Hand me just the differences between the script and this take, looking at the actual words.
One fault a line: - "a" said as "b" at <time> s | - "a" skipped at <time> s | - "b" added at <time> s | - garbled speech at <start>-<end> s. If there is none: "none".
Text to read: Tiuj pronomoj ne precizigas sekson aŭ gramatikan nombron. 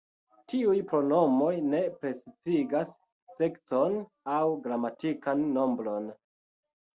none